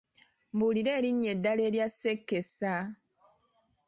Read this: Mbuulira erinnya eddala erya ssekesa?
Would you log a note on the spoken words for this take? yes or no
no